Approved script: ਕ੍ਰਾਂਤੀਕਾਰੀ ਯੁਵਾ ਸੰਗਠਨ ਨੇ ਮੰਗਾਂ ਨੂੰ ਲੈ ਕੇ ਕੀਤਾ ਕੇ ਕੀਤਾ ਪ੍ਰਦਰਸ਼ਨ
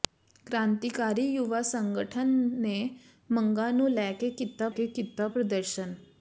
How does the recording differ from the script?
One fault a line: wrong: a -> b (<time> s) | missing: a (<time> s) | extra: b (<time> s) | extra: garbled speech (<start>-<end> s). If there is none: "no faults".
no faults